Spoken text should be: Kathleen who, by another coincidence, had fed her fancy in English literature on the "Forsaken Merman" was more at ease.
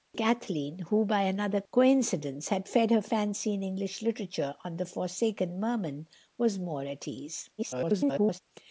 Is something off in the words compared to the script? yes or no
yes